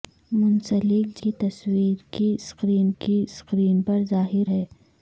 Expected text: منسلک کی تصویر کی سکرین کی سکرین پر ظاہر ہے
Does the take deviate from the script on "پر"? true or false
false